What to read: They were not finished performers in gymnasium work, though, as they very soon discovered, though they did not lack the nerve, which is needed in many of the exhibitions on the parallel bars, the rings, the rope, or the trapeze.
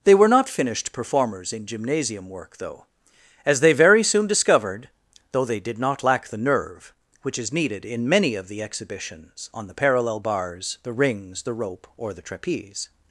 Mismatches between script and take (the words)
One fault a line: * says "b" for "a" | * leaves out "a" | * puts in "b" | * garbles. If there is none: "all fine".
all fine